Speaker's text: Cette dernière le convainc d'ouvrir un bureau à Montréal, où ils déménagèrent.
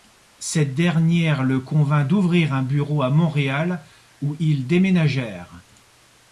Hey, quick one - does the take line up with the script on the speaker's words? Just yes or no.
yes